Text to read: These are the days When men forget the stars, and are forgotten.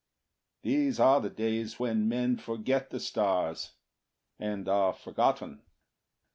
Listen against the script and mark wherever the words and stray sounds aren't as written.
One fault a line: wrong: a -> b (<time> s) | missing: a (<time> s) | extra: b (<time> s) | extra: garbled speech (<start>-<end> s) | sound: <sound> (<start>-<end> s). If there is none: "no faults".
no faults